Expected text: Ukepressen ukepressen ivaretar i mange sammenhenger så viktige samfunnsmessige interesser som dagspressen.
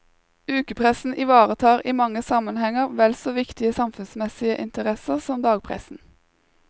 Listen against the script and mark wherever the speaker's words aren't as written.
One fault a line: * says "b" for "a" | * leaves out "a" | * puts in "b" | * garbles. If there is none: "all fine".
* leaves out "ukepressen"
* puts in "vel"